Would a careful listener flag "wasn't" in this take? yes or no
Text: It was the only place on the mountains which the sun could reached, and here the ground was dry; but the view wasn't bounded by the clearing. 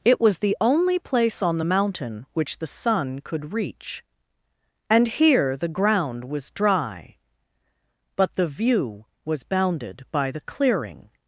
yes